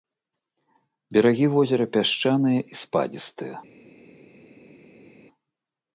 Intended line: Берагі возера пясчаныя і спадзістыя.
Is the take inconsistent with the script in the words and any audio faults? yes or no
no